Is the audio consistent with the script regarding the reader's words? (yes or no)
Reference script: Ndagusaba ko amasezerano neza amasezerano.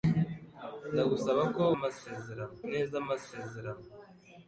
yes